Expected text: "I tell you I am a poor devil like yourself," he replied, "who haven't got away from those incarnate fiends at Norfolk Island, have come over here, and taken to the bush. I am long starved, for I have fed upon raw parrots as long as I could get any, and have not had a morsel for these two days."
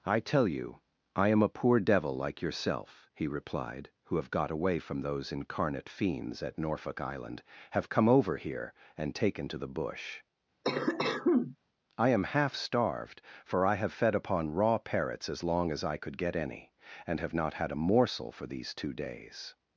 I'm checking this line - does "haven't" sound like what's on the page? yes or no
no